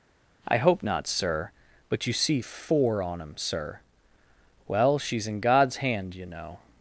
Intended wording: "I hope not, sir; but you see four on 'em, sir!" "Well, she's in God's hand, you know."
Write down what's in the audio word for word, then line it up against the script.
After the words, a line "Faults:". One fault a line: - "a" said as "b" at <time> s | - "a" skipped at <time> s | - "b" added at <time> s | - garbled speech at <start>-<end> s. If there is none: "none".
"I hope not, sir; but you see four on 'em, sir!" "Well, she's in God's hand, you know."
Faults:
none